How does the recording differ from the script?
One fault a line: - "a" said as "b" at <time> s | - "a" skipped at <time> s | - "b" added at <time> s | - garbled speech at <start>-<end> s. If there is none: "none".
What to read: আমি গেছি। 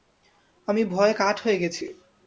- "ভয়ে কাঠ হয়ে" added at 0.8 s